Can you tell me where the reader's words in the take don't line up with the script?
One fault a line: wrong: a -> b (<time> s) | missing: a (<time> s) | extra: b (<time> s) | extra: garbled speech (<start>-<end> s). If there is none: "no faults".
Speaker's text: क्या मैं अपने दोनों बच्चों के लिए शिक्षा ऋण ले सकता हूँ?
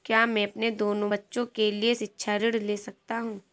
no faults